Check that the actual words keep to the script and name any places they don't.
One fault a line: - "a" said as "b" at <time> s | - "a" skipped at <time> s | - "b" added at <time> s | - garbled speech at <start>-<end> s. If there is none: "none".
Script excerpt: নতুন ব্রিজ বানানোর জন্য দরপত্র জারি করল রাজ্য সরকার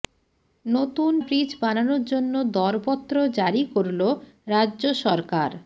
none